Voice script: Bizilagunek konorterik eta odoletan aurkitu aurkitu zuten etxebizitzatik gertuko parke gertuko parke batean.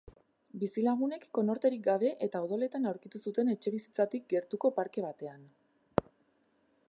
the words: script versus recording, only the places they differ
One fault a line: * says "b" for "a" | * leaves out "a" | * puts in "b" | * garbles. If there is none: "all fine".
* puts in "gabe"
* leaves out "aurkitu"
* leaves out "gertuko parke"